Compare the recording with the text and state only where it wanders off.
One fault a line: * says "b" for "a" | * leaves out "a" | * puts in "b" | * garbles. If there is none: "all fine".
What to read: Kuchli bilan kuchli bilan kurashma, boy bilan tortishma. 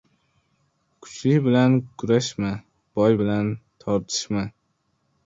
* leaves out "kuchli bilan"